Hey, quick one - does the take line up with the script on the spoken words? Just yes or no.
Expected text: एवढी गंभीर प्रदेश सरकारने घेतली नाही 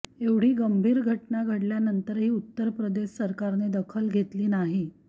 no